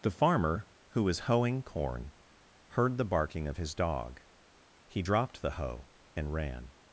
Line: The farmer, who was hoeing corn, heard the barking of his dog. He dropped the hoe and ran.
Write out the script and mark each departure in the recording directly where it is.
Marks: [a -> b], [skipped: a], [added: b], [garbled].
The farmer, who was hoeing corn, heard the barking of his dog. He dropped the hoe and ran.